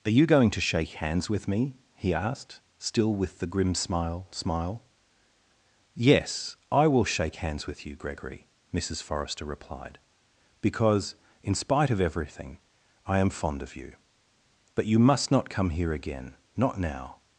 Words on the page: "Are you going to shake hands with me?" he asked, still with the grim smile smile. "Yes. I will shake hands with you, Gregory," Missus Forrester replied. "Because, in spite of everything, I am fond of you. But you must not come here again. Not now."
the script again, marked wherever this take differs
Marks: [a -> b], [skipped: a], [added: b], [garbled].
"Are you going to shake hands with me?" he asked, still with the grim smile smile. "Yes. I will shake hands with you, Gregory," Missus Forrester replied. "Because, in spite of everything, I am fond of you. But you must not come here again. Not now."